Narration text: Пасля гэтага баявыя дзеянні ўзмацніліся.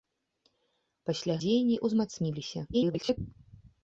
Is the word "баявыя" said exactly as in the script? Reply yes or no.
no